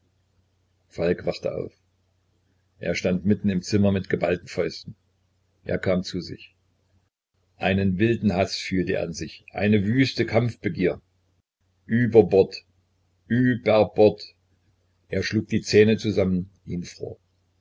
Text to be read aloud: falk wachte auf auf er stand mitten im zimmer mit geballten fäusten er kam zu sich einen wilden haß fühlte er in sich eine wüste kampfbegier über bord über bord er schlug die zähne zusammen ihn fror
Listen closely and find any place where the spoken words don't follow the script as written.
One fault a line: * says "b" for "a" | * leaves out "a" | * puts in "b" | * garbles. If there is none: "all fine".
* leaves out "auf"